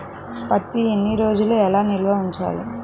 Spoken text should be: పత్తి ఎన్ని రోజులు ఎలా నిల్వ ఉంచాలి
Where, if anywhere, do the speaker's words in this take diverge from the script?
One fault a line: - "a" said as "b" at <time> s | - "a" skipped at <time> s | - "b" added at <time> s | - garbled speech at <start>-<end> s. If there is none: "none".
none